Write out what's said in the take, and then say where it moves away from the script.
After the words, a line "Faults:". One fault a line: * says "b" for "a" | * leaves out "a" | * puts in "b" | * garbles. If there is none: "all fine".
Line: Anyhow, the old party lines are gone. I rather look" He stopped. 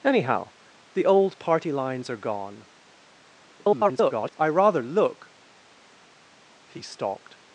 Anyhow, the old party lines are gone. [garbled] I rather look" He stopped.
Faults:
* garbles